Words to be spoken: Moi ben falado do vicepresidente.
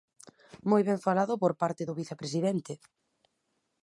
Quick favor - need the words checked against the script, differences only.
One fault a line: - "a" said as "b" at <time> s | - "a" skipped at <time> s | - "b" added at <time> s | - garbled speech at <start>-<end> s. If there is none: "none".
- "por parte" added at 1.4 s